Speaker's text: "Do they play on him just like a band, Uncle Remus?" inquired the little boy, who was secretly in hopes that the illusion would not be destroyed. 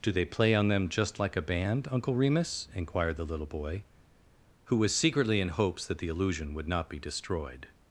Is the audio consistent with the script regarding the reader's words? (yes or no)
no